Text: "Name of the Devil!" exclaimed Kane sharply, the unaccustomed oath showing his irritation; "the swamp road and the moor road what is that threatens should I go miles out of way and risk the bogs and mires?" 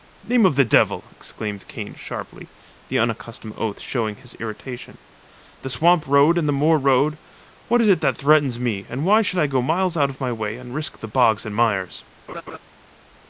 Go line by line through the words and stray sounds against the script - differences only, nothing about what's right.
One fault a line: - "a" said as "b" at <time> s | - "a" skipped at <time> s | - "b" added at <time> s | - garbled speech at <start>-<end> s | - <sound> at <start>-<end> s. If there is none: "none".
- "it" added at 7.9 s
- "me and why" added at 8.6 s
- "my" added at 10.2 s
- laugh at 12.3-12.6 s